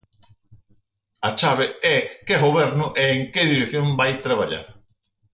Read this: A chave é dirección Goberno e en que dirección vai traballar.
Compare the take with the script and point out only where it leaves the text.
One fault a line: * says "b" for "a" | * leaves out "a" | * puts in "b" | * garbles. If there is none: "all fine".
* says "que" for "dirección"